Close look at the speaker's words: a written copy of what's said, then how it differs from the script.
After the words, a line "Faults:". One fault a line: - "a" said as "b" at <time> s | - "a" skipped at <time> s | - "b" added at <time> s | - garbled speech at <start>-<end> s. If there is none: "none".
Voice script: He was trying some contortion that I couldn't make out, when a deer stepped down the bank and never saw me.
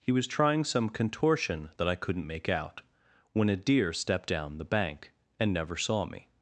He was trying some contortion that I couldn't make out, when a deer stepped down the bank and never saw me.
Faults:
none